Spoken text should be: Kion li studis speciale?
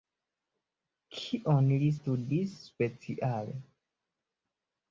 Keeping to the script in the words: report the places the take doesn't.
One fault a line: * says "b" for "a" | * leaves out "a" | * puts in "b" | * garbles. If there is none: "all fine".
all fine